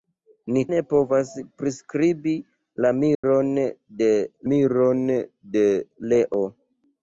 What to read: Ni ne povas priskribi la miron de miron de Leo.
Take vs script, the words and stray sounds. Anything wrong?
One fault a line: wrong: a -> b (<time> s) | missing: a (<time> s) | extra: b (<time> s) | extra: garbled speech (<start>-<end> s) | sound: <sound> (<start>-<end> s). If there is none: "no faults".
sound: dropout (3.1-3.2 s)